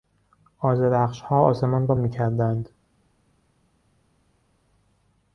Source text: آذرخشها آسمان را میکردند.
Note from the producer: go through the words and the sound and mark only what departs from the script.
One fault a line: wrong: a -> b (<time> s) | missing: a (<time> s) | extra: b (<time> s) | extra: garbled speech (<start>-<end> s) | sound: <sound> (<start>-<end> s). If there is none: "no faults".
no faults